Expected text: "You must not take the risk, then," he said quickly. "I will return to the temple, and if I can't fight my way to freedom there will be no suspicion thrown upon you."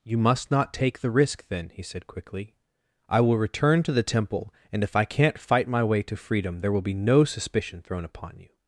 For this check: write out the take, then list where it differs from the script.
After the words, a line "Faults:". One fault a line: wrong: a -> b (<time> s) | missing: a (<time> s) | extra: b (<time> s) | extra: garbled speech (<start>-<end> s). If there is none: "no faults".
"You must not take the risk, then," he said quickly. "I will return to the temple, and if I can't fight my way to freedom there will be no suspicion thrown upon you."
Faults:
no faults